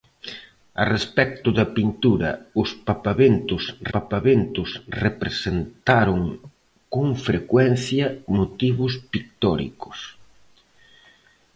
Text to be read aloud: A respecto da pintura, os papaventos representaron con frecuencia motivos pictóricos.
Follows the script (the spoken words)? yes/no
no